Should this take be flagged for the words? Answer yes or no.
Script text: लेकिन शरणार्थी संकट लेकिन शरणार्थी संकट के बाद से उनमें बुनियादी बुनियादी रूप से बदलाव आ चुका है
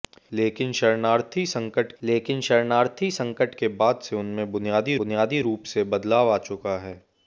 no